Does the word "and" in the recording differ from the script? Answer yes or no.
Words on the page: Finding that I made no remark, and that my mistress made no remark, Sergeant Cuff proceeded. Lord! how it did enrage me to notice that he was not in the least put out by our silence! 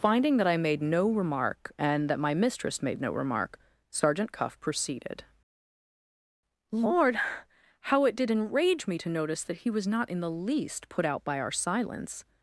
no